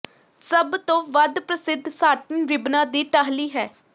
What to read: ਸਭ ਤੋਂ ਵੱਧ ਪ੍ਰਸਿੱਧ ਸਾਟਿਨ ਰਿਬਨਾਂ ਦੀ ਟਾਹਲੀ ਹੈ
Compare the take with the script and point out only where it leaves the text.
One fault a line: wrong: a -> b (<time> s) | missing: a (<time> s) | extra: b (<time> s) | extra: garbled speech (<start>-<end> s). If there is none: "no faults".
no faults